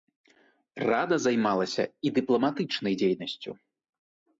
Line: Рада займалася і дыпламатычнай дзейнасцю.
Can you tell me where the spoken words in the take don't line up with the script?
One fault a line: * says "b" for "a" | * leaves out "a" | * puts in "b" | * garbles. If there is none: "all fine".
all fine